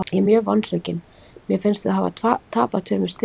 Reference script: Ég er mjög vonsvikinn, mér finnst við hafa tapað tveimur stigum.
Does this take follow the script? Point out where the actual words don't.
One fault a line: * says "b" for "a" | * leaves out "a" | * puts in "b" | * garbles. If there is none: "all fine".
all fine